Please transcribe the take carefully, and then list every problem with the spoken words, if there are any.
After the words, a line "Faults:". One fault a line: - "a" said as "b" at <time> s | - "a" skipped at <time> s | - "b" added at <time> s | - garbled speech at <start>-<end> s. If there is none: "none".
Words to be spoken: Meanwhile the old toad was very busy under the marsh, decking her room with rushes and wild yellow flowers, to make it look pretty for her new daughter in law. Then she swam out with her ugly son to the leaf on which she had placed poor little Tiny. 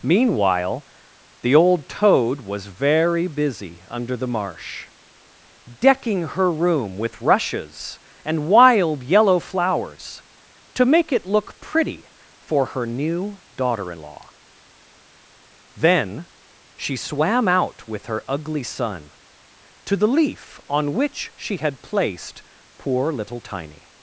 Meanwhile the old toad was very busy under the marsh, decking her room with rushes and wild yellow flowers, to make it look pretty for her new daughter in law. Then she swam out with her ugly son to the leaf on which she had placed poor little Tiny.
Faults:
none